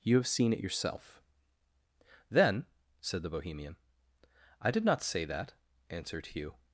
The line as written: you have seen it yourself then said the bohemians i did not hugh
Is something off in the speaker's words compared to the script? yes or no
yes